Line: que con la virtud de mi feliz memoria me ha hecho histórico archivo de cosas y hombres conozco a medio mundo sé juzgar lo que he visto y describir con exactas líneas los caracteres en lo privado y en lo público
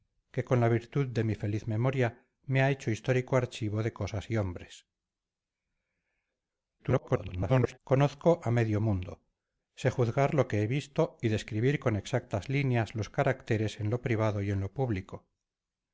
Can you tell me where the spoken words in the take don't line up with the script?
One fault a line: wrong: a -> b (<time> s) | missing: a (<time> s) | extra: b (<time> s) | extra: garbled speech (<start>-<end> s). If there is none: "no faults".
extra: garbled speech (6.8-7.8 s)